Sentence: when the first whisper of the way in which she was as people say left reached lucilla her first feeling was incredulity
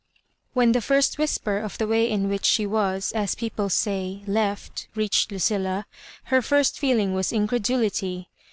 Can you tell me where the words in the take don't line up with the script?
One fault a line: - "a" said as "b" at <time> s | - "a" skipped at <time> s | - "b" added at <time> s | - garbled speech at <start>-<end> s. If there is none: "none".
none